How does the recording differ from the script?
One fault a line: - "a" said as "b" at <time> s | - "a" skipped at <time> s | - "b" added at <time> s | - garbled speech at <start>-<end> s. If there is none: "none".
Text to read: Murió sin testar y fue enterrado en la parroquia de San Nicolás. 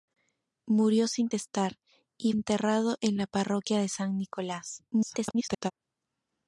- "fue" skipped at 2.3 s
- garbled speech at 4.9-5.7 s